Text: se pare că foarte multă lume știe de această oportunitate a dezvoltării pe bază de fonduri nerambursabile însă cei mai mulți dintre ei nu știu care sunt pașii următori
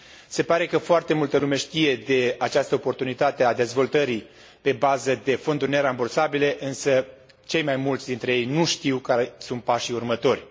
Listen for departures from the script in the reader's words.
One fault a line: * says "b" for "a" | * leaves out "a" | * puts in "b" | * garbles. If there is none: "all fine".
all fine